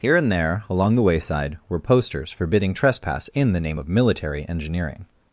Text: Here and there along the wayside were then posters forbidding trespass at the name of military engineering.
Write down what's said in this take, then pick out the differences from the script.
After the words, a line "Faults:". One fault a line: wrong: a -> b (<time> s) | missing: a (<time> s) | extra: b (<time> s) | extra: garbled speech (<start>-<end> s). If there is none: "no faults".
Here and there along the wayside were posters forbidding trespass in the name of military engineering.
Faults:
missing: then (1.8 s)
wrong: at -> in (3.4 s)